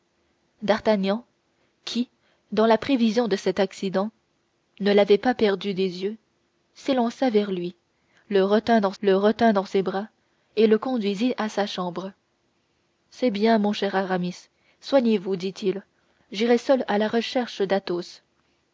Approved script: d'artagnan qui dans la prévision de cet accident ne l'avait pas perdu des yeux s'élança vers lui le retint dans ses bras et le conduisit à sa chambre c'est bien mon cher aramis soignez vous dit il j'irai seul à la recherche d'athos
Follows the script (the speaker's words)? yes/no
no